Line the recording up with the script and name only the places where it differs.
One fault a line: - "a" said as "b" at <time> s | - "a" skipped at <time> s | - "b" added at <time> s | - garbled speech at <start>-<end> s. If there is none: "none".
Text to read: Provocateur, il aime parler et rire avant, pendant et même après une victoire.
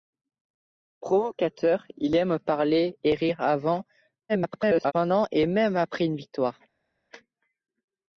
- garbled speech at 4.3-4.9 s